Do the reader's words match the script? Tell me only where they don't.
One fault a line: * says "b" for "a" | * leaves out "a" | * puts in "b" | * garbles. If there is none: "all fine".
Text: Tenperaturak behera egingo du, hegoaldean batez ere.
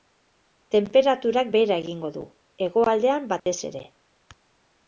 all fine